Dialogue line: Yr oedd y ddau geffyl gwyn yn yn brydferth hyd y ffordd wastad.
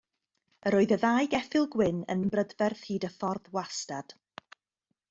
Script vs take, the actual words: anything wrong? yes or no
no